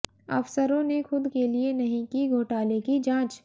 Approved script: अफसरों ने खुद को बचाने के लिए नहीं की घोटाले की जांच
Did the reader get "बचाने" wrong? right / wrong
wrong